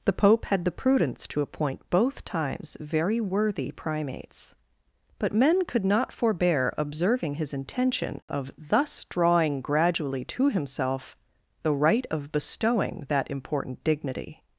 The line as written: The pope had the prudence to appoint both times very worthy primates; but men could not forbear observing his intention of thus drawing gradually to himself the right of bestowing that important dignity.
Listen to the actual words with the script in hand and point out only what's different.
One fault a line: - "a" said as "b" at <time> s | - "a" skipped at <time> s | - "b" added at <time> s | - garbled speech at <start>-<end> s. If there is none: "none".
none